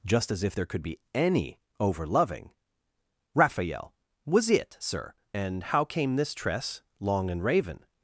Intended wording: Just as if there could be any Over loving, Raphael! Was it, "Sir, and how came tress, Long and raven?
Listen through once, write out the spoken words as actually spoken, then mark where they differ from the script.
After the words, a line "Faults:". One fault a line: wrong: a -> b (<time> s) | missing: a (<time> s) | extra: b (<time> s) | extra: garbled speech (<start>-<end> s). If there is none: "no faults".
Just as if there could be any Over loving, Raphael! Was it, "Sir, and how came this tress, Long and raven?
Faults:
extra: this (6.2 s)